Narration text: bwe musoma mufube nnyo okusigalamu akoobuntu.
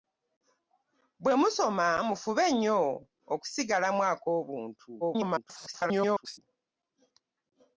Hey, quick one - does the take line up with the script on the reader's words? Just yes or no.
no